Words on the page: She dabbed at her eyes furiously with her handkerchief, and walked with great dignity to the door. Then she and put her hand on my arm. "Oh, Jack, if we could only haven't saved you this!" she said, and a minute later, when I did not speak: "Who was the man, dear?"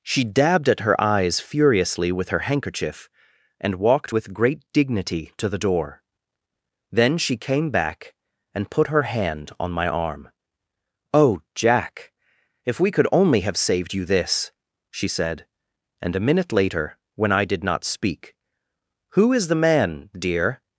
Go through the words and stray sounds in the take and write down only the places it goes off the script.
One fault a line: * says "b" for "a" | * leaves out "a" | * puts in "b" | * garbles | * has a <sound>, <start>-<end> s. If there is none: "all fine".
* puts in "came back"
* says "have" for "haven't"
* says "is" for "was"